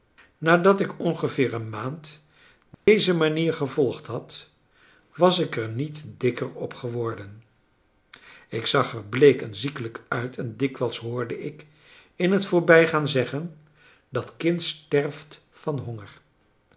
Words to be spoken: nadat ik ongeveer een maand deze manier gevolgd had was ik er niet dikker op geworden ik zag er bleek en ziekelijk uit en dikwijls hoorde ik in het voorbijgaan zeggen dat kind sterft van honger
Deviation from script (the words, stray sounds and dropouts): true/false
true